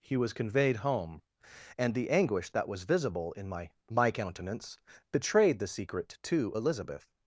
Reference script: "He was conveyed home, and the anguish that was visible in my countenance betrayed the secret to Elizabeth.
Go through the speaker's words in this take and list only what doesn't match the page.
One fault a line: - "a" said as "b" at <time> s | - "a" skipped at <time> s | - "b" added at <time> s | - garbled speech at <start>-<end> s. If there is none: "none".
- "my" added at 3.9 s